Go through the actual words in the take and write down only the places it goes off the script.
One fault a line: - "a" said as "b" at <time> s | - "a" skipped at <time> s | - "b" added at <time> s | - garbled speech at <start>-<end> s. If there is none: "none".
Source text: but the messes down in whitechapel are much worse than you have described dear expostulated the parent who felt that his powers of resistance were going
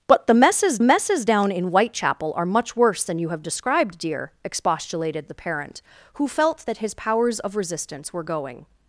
- "messes" added at 0.8 s